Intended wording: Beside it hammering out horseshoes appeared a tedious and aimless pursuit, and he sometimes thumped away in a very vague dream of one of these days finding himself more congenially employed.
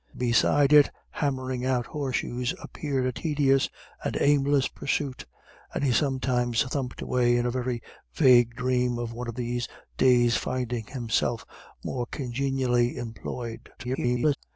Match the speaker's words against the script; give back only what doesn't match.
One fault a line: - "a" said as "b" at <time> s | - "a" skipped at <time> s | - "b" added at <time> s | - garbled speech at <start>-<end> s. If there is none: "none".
- garbled speech at 13.8-14.4 s